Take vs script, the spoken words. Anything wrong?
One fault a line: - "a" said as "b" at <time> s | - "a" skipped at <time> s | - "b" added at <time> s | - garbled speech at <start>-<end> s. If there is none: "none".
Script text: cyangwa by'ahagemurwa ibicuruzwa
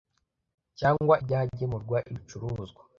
none